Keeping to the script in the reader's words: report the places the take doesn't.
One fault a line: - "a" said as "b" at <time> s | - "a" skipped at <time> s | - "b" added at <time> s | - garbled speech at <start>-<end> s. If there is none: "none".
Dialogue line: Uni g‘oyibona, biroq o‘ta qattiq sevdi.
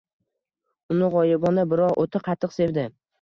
none